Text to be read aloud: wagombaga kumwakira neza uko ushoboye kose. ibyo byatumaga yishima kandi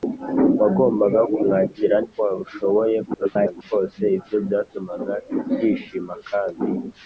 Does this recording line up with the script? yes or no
no